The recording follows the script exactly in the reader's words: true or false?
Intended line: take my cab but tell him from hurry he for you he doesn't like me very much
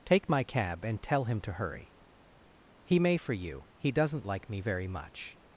false